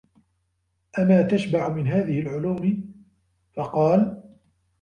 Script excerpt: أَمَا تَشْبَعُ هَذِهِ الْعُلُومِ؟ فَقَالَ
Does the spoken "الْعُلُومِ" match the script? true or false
true